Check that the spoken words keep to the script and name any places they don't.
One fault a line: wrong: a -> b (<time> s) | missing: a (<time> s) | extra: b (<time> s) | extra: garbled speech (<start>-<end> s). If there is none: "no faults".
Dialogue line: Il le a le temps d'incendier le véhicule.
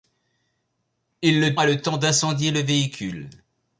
no faults